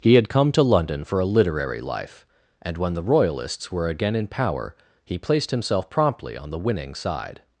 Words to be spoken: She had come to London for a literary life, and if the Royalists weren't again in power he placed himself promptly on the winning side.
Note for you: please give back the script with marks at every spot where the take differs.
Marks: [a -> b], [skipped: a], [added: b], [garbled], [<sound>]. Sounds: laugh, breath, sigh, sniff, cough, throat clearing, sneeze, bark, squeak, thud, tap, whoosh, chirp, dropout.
[She -> He] had come to London for a literary life, and [if -> when] the Royalists [weren't -> were] again in power he placed himself promptly on the winning side.